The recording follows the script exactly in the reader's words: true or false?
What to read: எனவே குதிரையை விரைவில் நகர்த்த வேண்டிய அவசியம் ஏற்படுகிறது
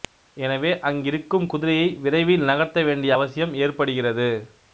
false